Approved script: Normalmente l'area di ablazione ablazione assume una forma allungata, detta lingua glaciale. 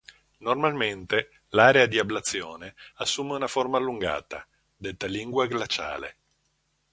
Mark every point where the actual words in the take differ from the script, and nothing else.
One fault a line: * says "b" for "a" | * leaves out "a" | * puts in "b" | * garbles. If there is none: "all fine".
* leaves out "ablazione"